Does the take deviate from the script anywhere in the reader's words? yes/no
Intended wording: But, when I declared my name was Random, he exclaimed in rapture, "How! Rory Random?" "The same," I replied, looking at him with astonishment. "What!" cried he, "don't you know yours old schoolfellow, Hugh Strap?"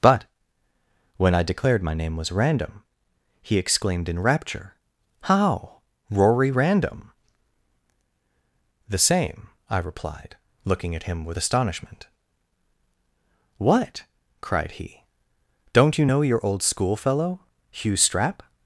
yes